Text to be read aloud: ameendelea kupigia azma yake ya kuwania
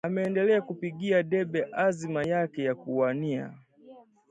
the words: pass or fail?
fail